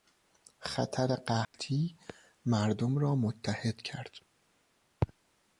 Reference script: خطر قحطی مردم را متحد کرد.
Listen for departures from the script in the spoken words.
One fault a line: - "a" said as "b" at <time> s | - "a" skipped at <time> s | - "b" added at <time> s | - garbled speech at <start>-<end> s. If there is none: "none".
none